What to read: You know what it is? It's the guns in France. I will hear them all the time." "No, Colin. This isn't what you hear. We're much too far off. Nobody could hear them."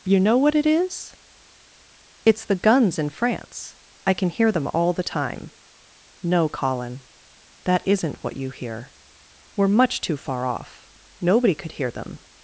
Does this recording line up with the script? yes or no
no